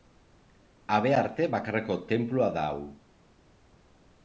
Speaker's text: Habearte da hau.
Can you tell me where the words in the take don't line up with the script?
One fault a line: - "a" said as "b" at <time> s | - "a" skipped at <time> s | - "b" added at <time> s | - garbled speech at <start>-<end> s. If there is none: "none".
- "bakarreko tenplua" added at 1.6 s